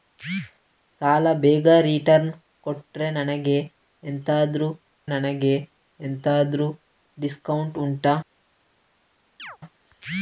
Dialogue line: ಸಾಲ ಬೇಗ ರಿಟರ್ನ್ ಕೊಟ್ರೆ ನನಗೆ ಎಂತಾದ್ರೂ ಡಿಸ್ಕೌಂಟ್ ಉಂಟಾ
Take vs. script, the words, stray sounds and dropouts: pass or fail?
fail